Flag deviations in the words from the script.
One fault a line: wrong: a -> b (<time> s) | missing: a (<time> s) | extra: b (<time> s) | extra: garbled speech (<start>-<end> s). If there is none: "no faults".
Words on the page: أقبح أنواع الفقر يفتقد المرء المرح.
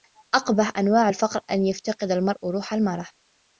extra: أن (1.5 s)
extra: روح (2.5 s)